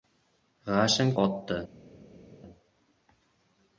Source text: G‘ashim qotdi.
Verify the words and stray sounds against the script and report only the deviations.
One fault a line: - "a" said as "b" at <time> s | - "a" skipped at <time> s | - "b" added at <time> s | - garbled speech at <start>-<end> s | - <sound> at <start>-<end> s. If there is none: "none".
none